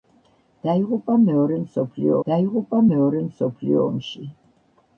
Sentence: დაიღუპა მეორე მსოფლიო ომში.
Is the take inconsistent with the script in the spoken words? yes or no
yes